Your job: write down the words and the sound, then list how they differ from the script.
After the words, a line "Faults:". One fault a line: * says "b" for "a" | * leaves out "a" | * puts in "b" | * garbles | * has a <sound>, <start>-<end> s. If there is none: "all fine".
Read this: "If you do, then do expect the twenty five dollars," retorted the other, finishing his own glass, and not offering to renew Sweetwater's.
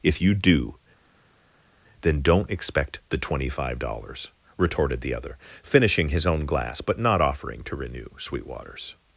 "If you do, then don't expect the twenty five dollars," retorted the other, finishing his own glass, but not offering to renew Sweetwater's.
Faults:
* says "don't" for "do"
* says "but" for "and"